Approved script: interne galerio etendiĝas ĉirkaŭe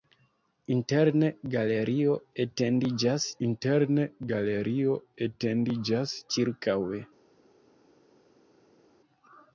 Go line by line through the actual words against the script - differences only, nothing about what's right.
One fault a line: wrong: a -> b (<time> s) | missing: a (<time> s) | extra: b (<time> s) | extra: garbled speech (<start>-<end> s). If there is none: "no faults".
extra: interne galerio etendiĝas (3.5 s)